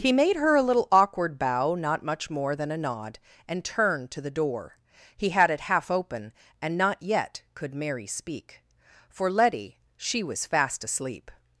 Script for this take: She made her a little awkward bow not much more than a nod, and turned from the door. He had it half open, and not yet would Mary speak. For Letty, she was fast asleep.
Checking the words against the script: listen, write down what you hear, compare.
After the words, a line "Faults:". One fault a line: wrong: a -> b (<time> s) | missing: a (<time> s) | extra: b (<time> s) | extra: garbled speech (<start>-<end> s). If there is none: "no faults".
He made her a little awkward bow not much more than a nod, and turned to the door. He had it half open, and not yet could Mary speak. For Letty, she was fast asleep.
Faults:
wrong: She -> He (0.0 s)
wrong: from -> to (4.1 s)
wrong: would -> could (7.5 s)